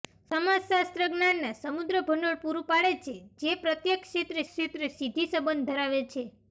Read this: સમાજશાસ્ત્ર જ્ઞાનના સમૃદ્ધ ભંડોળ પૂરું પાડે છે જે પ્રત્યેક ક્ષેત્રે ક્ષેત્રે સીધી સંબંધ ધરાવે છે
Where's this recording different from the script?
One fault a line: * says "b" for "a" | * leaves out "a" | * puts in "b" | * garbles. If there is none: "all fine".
all fine